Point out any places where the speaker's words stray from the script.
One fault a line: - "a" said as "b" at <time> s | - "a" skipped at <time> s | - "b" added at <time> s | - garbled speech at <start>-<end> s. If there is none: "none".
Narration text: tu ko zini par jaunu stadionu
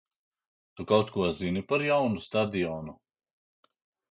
- "kaut" added at 0.9 s